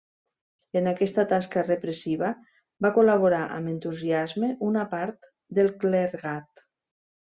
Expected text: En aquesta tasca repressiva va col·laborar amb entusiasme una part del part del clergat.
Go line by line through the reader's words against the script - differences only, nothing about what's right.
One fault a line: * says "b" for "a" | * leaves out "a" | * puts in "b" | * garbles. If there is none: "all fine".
* leaves out "part del"